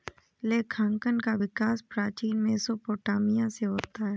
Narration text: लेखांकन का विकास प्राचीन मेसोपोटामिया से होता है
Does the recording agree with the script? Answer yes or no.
yes